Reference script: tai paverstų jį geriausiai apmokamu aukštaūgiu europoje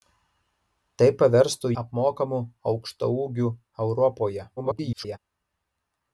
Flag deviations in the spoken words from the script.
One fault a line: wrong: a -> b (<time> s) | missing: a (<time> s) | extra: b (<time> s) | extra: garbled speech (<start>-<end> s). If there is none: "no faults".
missing: jį geriausiai (1.7 s)
extra: garbled speech (4.6-5.2 s)